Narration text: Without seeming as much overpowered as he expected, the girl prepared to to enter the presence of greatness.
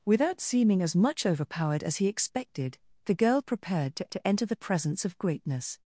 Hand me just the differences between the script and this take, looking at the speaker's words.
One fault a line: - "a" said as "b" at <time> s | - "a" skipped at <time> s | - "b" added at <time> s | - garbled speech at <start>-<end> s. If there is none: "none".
none